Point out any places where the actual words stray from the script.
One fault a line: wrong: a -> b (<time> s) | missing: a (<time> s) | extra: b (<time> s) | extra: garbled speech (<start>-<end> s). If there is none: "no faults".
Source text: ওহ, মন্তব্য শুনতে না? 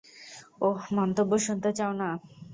extra: চাও (1.8 s)